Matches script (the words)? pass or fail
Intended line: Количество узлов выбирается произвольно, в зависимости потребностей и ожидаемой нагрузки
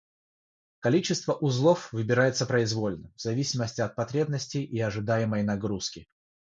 fail